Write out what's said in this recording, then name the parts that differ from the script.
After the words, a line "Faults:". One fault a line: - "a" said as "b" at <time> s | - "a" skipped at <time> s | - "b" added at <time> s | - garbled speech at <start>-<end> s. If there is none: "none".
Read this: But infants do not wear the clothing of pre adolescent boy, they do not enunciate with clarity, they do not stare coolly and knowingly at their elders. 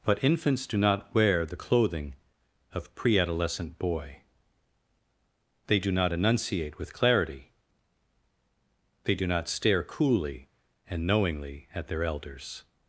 But infants do not wear the clothing of pre adolescent boy, they do not enunciate with clarity, they do not stare coolly and knowingly at their elders.
Faults:
none